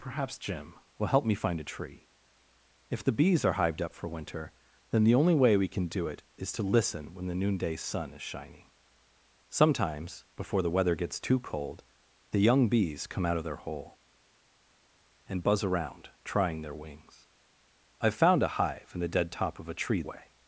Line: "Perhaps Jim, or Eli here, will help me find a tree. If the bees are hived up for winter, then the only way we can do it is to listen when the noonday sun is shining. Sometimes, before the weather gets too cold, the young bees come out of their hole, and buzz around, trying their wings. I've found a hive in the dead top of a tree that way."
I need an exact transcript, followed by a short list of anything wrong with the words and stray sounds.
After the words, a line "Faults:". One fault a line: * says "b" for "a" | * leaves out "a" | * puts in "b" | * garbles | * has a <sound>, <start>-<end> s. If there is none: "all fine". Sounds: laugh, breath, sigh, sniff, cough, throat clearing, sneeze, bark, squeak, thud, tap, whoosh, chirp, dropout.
"Perhaps Jim, will help me find a tree. If the bees are hived up for winter, then the only way we can do it is to listen when the noonday sun is shining. Sometimes, before the weather gets too cold, the young bees come out of their hole, and buzz around, trying their wings. I've found a hive in the dead top of a tree way."
Faults:
* leaves out "or Eli here"
* leaves out "that"